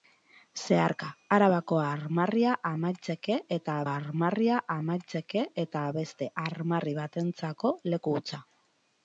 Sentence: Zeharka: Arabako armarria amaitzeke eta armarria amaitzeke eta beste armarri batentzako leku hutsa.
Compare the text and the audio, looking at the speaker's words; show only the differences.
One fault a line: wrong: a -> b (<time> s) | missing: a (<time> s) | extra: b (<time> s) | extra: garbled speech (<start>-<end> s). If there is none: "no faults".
no faults